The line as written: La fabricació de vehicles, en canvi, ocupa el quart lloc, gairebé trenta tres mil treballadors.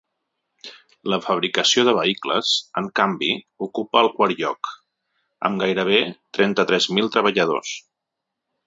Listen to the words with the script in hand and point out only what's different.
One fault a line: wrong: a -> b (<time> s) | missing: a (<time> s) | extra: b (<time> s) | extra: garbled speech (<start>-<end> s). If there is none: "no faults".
extra: amb (5.5 s)